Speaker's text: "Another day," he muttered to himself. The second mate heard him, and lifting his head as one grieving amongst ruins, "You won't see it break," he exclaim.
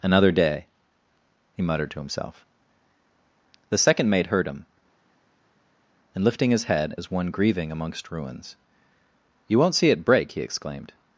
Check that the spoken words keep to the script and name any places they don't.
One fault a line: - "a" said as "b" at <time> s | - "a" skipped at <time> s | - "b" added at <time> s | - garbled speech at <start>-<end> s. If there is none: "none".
- "exclaim" said as "exclaimed" at 10.4 s